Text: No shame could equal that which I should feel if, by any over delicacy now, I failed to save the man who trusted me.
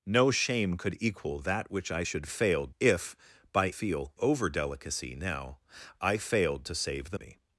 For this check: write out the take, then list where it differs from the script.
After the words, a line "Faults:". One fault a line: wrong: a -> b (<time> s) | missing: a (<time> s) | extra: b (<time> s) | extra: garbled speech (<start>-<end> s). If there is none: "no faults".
No shame could equal that which I should failed if, by feel over delicacy now, I failed to save the me.
Faults:
wrong: feel -> failed (2.2 s)
wrong: any -> feel (3.7 s)
missing: man who trusted (7.2 s)